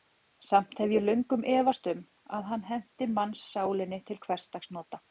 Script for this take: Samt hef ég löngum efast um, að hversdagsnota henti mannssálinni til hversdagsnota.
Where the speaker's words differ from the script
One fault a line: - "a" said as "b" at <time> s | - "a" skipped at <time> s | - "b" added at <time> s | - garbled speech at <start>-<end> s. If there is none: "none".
- "hversdagsnota" said as "hann" at 2.5 s